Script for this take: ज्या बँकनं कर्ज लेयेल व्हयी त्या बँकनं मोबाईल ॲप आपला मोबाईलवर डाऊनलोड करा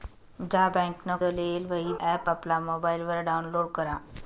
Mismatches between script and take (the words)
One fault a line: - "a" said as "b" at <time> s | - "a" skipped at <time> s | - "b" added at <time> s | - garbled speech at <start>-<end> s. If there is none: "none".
- "कर्ज" skipped at 1.2 s
- "त्या बँकनं मोबाईल" skipped at 1.9 s